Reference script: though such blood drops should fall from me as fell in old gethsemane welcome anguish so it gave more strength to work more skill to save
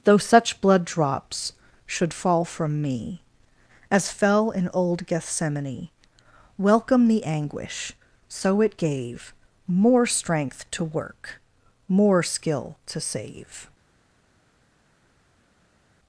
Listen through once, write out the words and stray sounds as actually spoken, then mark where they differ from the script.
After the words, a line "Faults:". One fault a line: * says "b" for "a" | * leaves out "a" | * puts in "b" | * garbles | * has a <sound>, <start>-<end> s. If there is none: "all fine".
though such blood drops should fall from me as fell in old gethsemane welcome the anguish so it gave more strength to work more skill to save
Faults:
* puts in "the"